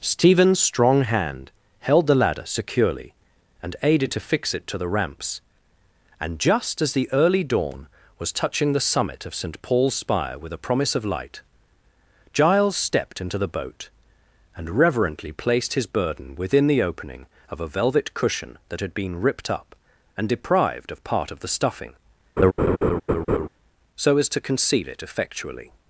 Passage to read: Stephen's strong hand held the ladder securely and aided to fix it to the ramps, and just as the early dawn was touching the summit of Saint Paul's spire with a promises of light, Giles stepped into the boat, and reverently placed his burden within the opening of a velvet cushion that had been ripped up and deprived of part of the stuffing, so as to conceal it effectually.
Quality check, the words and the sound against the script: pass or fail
fail